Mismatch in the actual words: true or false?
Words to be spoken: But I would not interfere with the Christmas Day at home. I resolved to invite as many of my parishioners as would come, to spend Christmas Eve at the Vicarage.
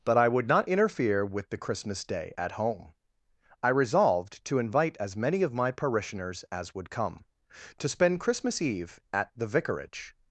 false